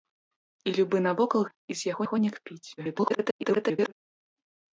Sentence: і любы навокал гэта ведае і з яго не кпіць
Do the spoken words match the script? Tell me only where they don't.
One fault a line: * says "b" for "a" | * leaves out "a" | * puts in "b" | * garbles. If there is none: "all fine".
* leaves out "гэта ведае"
* puts in "яго"
* garbles